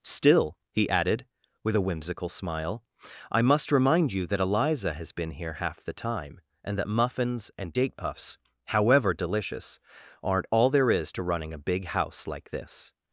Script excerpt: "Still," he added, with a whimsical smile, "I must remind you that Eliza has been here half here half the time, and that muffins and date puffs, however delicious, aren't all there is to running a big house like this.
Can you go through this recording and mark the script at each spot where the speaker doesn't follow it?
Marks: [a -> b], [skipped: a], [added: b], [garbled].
"Still," he added, with a whimsical smile, "I must remind you that Eliza has been here half [skipped: here half] the time, and that muffins and date puffs, however delicious, aren't all there is to running a big house like this.